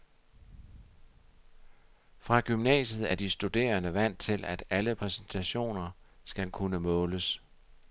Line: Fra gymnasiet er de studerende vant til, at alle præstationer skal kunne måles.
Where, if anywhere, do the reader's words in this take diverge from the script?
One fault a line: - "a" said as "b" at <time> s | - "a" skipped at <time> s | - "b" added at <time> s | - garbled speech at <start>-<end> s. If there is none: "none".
none